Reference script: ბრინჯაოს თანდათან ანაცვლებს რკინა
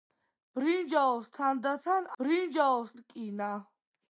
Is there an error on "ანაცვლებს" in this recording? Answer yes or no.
yes